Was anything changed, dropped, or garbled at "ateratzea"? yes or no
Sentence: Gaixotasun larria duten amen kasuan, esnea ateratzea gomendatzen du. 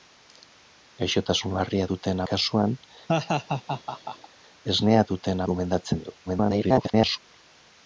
yes